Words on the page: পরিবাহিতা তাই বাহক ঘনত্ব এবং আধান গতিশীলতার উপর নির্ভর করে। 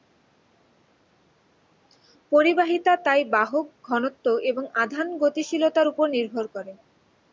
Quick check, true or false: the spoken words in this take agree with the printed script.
true